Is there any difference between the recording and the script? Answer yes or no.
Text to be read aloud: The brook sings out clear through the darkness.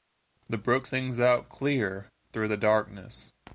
no